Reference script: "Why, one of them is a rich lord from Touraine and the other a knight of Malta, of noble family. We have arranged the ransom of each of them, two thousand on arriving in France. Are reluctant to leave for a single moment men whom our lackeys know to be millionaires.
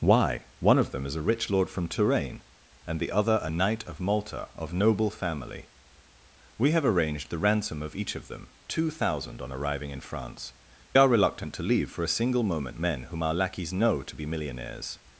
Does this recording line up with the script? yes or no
yes